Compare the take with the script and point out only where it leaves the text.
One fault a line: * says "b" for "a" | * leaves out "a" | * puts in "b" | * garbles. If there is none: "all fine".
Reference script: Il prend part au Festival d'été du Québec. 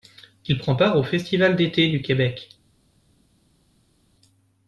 all fine